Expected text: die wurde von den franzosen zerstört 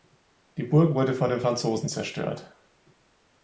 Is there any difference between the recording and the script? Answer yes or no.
yes